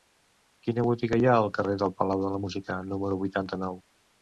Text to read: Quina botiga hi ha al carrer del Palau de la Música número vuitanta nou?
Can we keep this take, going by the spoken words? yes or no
yes